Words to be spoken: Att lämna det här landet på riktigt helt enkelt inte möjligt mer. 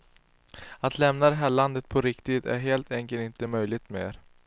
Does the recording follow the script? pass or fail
fail